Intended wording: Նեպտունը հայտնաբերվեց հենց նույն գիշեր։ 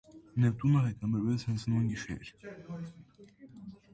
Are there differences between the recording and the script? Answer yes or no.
no